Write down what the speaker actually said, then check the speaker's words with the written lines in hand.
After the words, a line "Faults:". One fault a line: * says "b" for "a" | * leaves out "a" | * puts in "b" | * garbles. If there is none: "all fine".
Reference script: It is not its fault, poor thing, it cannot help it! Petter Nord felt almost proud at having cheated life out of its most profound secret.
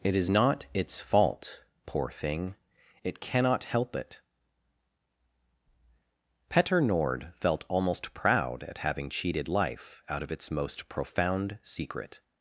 It is not its fault, poor thing, it cannot help it! Petter Nord felt almost proud at having cheated life out of its most profound secret.
Faults:
all fine